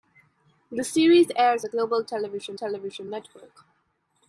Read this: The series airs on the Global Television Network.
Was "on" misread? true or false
true